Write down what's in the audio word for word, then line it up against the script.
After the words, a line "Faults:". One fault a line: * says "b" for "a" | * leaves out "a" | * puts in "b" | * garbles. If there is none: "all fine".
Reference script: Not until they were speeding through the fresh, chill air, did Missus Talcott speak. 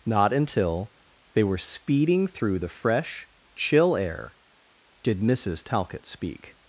Not until they were speeding through the fresh, chill air, did Missus Talcott speak.
Faults:
all fine